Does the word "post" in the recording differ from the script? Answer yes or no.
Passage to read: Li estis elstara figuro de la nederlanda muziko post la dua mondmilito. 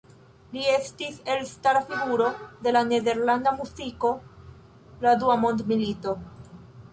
yes